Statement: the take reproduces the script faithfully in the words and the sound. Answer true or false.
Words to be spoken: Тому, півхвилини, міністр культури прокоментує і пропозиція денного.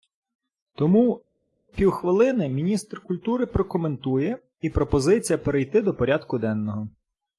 false